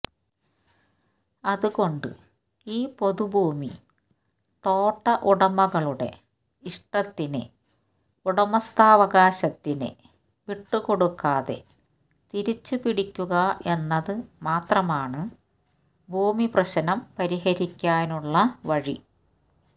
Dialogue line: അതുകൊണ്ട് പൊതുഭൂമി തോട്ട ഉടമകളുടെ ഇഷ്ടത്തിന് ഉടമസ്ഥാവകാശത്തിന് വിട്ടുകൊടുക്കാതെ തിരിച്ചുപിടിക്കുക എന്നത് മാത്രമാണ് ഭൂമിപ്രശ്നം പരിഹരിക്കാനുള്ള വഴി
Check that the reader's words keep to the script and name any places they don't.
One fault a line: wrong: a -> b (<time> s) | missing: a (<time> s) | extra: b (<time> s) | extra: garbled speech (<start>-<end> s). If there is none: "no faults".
extra: ഈ (2.7 s)